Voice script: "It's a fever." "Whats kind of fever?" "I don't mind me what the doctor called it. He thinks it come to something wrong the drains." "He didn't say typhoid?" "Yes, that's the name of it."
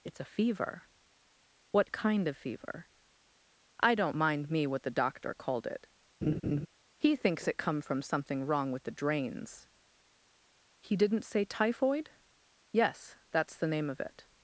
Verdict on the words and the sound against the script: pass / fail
fail